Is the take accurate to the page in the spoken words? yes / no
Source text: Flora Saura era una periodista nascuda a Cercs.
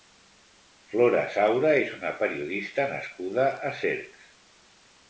no